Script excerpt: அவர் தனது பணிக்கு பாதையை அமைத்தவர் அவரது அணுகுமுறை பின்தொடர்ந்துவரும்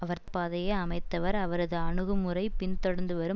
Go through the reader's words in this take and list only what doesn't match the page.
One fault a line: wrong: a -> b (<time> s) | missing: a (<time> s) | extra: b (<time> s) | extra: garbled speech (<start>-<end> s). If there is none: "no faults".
missing: தனது பணிக்கு (0.2 s)